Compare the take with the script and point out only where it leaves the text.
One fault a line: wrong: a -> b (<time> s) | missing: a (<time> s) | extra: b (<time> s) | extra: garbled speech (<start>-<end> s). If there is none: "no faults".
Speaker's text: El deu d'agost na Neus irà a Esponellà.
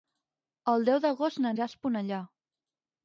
missing: Neus (1.5 s)